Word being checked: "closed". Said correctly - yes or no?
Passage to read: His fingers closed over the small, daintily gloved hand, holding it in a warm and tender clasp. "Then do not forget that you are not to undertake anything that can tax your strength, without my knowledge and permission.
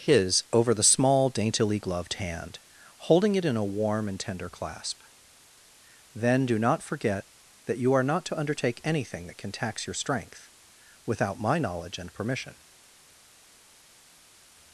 no